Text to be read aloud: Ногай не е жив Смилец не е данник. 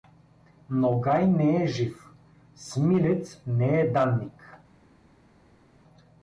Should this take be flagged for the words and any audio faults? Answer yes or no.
no